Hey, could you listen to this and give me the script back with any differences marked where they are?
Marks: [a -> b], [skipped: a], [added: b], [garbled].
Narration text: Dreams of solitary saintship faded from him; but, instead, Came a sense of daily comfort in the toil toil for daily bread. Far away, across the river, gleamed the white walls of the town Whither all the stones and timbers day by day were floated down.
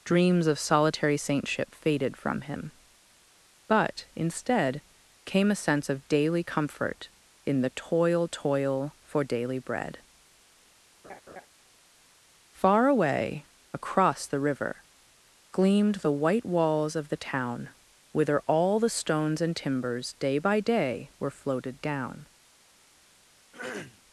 Dreams of solitary saintship faded from him; but, instead, Came a sense of daily comfort in the toil toil for daily bread. Far away, across the river, gleamed the white walls of the town Whither all the stones and timbers day by day were floated down.